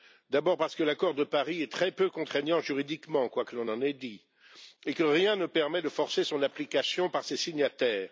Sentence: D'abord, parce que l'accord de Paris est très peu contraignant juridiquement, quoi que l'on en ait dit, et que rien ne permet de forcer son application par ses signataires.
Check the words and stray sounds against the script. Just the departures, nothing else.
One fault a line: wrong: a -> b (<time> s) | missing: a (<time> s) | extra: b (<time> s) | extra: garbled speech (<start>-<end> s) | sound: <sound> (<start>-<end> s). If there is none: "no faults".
no faults